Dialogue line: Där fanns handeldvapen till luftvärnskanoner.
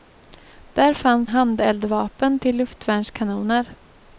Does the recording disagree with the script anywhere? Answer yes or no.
no